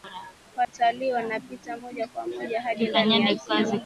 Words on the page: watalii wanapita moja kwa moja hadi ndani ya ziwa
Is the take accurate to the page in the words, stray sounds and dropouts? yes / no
no